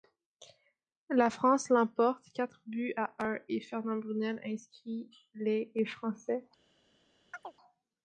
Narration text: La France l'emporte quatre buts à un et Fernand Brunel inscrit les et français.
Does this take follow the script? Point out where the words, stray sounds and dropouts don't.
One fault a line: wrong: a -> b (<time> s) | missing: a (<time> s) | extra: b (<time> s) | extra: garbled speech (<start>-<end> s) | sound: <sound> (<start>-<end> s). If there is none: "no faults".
sound: chirp (7.3-7.5 s)